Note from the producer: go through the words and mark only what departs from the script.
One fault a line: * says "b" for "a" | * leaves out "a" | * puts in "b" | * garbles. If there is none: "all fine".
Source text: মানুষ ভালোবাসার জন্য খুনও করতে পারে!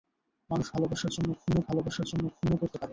* puts in "ভালোবাসার জন্য খুনও"